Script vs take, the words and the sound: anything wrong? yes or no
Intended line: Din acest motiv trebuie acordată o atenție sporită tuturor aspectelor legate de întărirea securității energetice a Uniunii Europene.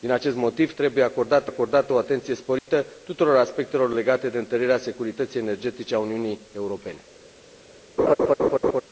yes